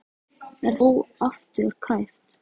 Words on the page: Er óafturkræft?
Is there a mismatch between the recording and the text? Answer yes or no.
no